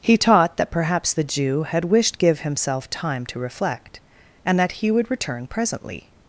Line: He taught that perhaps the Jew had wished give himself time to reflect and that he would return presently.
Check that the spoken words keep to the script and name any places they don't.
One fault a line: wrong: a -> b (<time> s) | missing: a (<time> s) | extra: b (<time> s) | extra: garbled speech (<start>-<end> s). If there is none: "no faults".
no faults